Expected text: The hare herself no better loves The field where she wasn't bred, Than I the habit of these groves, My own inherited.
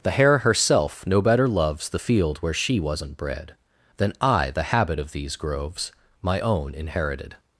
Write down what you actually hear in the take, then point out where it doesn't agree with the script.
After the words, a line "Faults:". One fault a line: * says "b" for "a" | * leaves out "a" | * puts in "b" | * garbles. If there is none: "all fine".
The hare herself no better loves The field where she wasn't bred, Than I the habit of these groves, My own inherited.
Faults:
all fine